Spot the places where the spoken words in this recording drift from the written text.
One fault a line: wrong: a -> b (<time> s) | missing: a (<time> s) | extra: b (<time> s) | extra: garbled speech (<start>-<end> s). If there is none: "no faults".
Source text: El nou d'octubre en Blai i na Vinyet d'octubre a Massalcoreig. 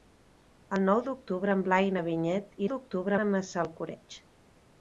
no faults